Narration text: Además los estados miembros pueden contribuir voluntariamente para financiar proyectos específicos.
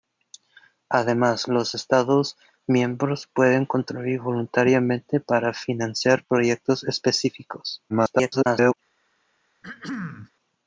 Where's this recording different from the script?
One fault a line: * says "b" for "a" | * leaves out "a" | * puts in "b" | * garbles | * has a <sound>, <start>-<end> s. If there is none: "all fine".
* garbles
* has a throat clearing, 9.6-10.3 s